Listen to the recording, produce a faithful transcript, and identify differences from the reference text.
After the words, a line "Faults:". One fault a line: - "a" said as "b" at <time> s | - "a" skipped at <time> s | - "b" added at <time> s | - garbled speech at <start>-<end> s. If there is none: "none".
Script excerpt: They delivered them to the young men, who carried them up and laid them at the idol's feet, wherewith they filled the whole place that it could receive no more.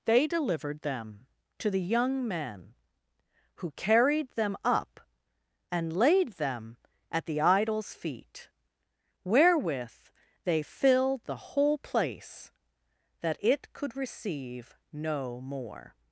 They delivered them to the young men, who carried them up and laid them at the idol's feet, wherewith they filled the whole place that it could receive no more.
Faults:
none